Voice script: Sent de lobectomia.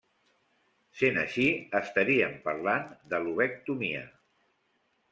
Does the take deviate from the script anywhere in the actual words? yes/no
yes